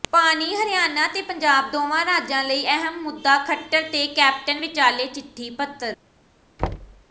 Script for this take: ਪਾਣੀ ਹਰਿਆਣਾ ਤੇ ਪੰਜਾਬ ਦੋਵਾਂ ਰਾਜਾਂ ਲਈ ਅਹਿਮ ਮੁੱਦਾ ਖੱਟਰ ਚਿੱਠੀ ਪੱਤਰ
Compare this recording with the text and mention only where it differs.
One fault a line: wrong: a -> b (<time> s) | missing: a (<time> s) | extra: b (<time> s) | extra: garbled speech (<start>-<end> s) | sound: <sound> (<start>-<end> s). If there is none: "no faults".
extra: ਤੇ ਕੈਪਟਨ ਵਿਚਾਲੇ (3.9 s)
sound: thud (6.6-7.0 s)